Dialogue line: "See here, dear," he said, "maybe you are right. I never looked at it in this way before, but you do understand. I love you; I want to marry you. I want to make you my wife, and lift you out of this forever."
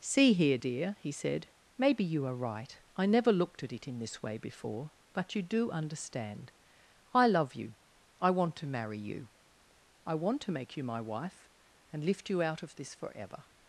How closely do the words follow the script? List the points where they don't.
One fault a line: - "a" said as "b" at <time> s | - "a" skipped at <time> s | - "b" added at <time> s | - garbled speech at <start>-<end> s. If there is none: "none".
none